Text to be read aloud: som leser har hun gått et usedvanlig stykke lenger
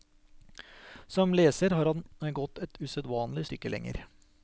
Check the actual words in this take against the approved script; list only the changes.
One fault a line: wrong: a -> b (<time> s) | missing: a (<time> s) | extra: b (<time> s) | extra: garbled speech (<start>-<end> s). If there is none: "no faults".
wrong: hun -> han (1.9 s)